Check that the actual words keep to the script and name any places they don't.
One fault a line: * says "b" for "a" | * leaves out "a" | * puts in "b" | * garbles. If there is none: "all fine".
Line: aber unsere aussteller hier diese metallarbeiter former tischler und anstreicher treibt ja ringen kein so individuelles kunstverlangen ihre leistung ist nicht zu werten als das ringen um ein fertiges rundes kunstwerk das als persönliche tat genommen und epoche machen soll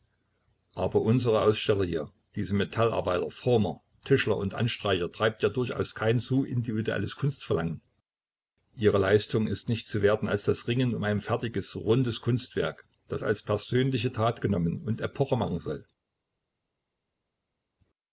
* says "durchaus" for "ringen"